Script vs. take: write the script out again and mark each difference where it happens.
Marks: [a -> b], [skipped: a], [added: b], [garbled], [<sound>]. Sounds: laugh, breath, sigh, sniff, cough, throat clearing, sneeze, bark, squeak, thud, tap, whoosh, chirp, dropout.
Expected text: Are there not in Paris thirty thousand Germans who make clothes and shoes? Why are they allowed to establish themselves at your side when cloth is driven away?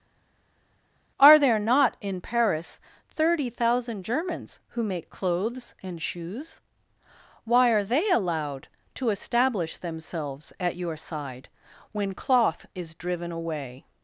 Are there not in Paris thirty thousand Germans who make clothes and shoes? Why are they allowed to establish themselves at your side when cloth is driven away?